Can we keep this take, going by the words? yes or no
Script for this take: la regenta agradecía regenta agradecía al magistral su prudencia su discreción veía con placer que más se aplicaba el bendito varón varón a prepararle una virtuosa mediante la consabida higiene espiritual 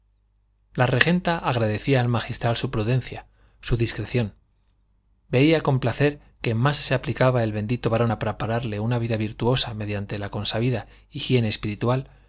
no